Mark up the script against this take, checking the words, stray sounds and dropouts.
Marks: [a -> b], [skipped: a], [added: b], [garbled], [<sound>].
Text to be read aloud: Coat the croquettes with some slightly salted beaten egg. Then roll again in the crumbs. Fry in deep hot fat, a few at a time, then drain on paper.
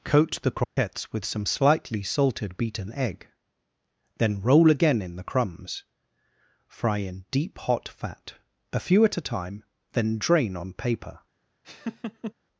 Coat the croquettes [dropout] with some slightly salted beaten egg. Then roll again in the crumbs. Fry in deep hot fat, a few at a time, then drain on paper. [laugh]